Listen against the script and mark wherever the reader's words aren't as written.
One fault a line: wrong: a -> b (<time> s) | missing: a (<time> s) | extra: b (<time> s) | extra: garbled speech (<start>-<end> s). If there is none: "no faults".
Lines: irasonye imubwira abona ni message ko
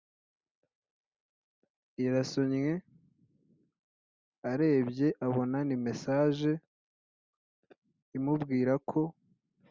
wrong: imubwira -> arebye (4.5 s)
extra: imubwira (8.2 s)